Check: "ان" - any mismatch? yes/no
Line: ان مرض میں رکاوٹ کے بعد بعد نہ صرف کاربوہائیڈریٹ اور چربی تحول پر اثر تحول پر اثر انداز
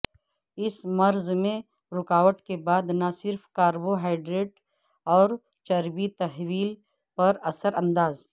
yes